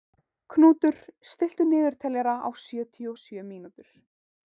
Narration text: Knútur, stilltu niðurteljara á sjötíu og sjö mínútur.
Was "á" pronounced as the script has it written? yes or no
yes